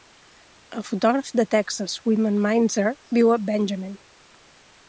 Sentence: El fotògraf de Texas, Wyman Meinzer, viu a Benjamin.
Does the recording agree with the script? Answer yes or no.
yes